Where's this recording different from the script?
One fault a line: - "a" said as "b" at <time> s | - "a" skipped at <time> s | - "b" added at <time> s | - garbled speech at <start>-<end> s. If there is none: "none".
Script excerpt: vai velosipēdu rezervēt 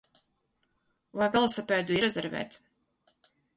none